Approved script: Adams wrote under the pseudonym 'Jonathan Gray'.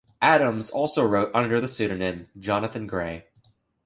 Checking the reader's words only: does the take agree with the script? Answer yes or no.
no